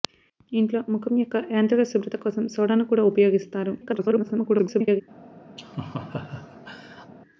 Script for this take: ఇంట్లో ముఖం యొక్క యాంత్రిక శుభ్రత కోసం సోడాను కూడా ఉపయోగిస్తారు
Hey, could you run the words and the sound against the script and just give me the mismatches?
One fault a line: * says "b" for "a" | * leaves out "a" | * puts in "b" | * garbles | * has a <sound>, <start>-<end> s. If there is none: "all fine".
* garbles
* has a laugh, 5.6-7.1 s